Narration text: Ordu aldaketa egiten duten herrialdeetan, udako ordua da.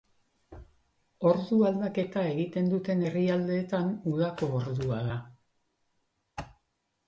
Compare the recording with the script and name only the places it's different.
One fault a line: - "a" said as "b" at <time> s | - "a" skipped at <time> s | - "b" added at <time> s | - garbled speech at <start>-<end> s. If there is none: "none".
none